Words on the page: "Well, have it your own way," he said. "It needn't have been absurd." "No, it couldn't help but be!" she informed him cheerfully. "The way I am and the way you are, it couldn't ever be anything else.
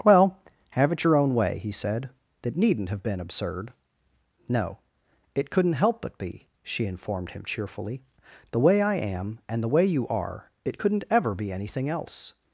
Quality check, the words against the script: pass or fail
fail